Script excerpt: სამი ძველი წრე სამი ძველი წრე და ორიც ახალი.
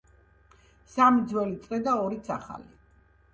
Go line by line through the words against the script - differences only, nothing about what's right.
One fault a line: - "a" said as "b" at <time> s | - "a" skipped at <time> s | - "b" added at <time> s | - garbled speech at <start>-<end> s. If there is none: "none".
- "სამი ძველი წრე" skipped at 1.8 s